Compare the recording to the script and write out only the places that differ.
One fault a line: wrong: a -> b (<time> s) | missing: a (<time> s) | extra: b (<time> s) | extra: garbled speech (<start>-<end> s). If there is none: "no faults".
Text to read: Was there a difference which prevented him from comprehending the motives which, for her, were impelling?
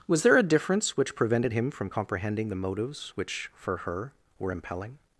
no faults